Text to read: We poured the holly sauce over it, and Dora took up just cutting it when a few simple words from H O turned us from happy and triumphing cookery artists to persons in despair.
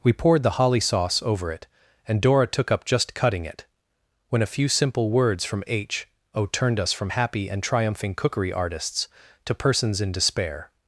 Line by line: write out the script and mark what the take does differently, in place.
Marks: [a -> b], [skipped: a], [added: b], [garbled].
We poured the holly sauce over it, and Dora took up just cutting it when a few simple words from H O turned us from happy and triumphing cookery artists to persons in despair.